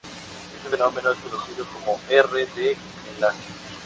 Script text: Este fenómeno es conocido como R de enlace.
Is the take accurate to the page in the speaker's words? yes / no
yes